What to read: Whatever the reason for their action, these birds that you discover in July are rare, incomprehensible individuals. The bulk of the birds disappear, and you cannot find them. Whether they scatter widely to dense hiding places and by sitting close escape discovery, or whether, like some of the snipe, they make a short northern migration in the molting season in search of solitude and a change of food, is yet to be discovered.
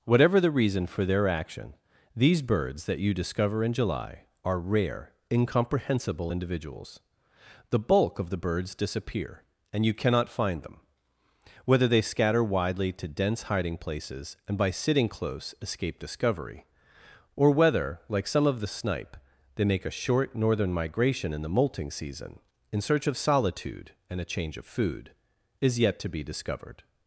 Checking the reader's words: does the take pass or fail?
pass